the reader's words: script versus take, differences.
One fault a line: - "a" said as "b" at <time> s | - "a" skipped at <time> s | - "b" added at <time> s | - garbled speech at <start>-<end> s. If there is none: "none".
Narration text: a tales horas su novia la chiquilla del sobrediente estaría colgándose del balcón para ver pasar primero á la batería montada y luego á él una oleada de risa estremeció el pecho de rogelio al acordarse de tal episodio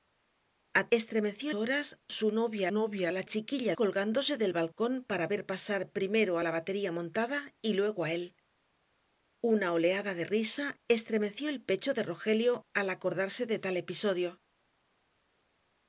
- "tales" said as "estremeció" at 1.0 s
- "novia" added at 2.7 s
- "del sobrediente estaría" skipped at 3.8 s